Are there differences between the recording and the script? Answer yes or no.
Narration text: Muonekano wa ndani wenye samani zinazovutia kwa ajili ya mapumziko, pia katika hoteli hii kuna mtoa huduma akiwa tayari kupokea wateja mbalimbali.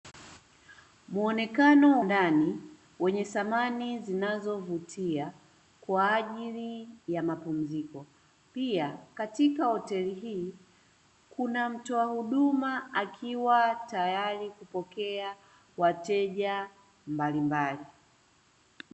yes